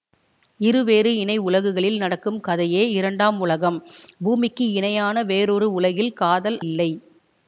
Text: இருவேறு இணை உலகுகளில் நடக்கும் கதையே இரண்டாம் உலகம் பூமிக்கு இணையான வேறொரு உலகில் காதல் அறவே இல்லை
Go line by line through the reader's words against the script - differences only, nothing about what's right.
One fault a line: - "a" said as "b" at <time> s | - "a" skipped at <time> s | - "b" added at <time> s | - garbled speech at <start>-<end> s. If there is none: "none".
- "அறவே" skipped at 6.6 s